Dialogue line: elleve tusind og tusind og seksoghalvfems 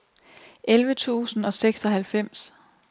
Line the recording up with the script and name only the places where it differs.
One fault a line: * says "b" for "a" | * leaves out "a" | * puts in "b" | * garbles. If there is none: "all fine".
* leaves out "tusind og"